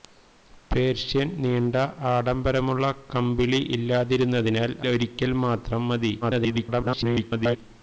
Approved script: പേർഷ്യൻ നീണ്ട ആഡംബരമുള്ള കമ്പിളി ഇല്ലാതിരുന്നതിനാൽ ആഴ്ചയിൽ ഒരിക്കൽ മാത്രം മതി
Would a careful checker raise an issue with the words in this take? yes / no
yes